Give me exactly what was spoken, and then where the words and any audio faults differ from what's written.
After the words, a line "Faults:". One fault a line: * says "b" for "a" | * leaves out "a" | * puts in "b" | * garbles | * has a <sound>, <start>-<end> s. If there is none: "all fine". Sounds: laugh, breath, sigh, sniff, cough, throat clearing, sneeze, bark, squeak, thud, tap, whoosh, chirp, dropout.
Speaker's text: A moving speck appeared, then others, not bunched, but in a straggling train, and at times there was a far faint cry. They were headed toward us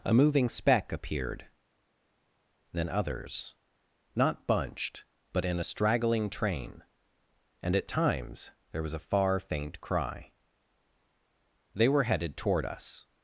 A moving speck appeared, then others, not bunched, but in a straggling train, and at times there was a far faint cry. They were headed toward us
Faults:
all fine